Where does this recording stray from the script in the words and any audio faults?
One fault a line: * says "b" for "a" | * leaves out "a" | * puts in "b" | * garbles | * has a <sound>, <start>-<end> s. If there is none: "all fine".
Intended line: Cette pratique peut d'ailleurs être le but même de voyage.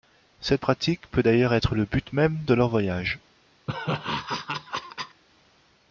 * puts in "leur"
* has a laugh, 3.7-5.2 s